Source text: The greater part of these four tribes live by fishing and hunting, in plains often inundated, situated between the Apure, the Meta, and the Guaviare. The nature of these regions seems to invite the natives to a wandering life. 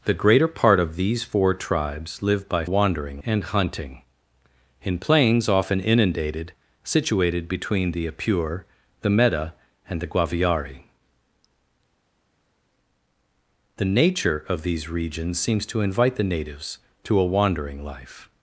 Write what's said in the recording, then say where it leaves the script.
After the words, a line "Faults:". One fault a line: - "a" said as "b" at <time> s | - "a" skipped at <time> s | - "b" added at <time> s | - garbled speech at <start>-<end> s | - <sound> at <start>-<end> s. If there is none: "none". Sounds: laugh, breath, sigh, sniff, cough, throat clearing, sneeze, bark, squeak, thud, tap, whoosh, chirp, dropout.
The greater part of these four tribes live by wandering and hunting, in plains often inundated, situated between the Apure, the Meta, and the Guaviare. The nature of these regions seems to invite the natives to a wandering life.
Faults:
- "fishing" said as "wandering" at 2.6 s